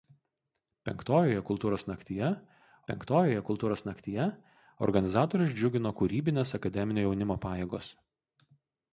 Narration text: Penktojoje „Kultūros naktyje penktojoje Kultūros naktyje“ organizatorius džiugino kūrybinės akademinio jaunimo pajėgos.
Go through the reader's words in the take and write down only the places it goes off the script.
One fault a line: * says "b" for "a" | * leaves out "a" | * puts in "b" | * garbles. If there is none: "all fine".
all fine